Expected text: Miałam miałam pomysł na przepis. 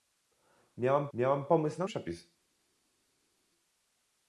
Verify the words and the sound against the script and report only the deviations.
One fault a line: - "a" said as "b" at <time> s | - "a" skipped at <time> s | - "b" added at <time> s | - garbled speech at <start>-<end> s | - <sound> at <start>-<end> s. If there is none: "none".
none